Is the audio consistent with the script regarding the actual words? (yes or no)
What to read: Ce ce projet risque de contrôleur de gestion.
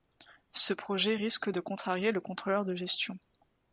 no